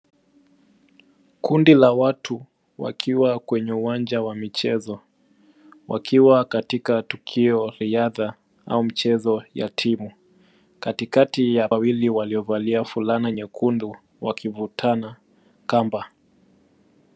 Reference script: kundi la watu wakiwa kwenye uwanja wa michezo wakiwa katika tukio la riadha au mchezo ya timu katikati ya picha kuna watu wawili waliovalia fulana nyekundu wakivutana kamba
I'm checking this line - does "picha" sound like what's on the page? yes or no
no